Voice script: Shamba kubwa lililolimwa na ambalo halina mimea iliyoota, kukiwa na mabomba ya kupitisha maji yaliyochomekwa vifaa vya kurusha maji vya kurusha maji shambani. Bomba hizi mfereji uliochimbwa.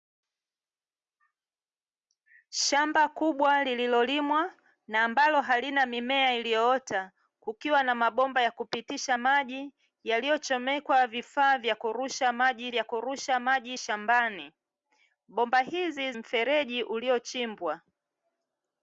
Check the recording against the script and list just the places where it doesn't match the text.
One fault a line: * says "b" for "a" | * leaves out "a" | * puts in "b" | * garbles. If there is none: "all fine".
all fine